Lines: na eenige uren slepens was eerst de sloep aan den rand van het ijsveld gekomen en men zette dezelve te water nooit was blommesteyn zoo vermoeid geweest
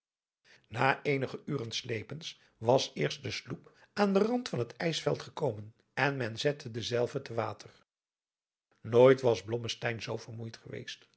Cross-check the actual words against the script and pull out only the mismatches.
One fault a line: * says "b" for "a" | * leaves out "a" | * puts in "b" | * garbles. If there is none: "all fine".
all fine